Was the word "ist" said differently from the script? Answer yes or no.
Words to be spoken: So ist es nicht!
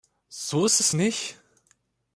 no